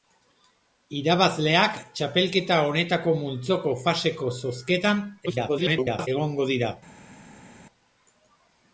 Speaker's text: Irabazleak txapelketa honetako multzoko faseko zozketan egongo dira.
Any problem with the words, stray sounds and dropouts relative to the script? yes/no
yes